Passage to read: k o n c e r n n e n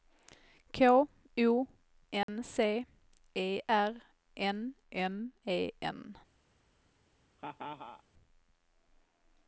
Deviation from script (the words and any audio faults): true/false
true